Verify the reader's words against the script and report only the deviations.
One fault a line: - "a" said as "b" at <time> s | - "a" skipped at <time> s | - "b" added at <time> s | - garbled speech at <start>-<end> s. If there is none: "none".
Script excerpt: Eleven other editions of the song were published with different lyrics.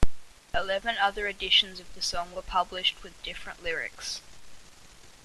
none